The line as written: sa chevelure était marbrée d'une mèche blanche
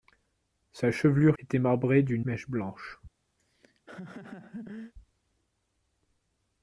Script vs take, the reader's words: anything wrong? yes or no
no